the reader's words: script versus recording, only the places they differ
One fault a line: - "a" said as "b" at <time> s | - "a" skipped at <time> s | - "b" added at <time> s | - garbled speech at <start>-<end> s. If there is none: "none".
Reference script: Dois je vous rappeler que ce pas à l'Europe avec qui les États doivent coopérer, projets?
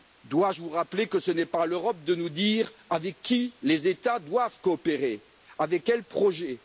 - "n'est" added at 1.3 s
- "de nous dire" added at 2.0 s
- "avec quels" added at 5.6 s